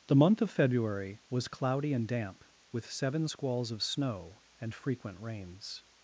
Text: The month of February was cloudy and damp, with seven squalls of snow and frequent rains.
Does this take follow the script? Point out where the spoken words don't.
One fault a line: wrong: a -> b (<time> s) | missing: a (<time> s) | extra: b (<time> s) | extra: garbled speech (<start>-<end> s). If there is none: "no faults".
no faults